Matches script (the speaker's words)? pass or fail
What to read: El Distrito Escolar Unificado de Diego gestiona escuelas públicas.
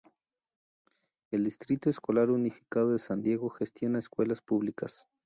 fail